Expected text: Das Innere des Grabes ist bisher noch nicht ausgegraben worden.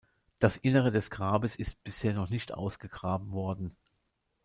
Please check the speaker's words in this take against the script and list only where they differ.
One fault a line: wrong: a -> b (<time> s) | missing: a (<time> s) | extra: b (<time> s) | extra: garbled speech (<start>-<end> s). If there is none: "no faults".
no faults